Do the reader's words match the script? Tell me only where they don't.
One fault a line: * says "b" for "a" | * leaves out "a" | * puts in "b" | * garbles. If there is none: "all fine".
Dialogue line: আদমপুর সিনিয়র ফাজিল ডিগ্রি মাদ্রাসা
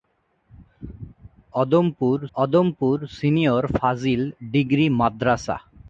* puts in "আদমপুর"